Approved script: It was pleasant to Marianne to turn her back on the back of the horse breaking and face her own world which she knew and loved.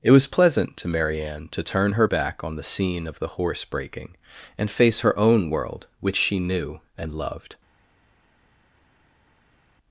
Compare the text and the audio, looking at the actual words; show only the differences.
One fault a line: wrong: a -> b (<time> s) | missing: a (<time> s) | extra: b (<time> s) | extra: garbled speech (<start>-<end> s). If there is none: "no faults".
wrong: back -> scene (2.6 s)